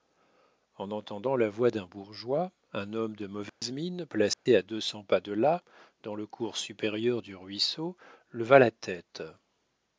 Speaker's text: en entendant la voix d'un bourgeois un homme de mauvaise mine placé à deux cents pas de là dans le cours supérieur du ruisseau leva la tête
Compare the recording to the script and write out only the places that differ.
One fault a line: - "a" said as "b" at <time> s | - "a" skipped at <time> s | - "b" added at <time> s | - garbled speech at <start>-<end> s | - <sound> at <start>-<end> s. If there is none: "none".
- dropout at 3.5-3.6 s
- dropout at 4.3-4.5 s